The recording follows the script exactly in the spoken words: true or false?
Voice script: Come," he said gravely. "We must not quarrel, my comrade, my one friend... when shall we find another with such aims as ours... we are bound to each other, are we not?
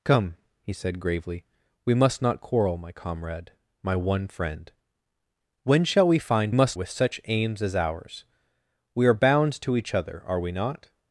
false